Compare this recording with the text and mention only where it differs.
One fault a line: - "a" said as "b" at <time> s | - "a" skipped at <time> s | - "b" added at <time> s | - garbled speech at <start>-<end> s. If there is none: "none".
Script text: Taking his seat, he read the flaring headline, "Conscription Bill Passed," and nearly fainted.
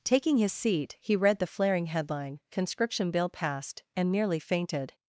none